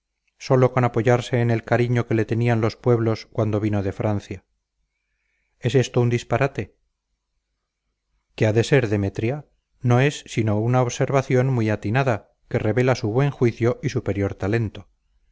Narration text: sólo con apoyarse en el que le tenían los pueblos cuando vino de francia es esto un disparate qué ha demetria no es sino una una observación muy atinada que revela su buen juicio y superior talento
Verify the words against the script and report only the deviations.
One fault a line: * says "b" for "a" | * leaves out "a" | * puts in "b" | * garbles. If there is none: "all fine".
* puts in "cariño"
* puts in "de ser"
* leaves out "una"